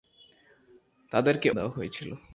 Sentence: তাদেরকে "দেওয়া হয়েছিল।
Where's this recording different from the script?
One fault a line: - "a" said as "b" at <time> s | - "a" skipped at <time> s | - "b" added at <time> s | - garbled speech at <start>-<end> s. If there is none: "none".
none